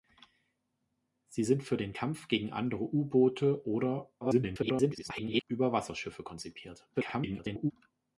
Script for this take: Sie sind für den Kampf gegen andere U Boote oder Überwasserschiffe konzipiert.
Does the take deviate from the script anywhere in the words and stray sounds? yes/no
yes